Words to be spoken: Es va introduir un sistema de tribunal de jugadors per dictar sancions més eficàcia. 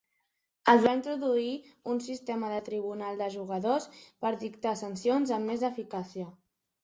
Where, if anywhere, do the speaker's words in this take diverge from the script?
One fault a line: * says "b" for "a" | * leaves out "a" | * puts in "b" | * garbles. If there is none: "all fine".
* puts in "amb"